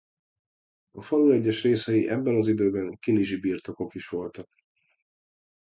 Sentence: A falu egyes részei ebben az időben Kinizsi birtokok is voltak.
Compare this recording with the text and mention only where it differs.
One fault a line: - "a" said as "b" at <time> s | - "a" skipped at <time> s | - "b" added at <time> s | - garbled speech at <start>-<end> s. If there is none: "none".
none